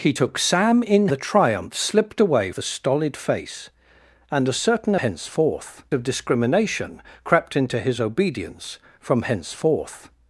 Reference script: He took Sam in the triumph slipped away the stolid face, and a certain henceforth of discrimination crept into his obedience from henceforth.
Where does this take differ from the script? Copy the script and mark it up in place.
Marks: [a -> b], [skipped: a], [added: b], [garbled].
He took Sam in the triumph slipped away the stolid face, and a certain henceforth of discrimination crept into his obedience from henceforth.